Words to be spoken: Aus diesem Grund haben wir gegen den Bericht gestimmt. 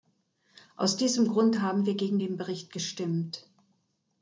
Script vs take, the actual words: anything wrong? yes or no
no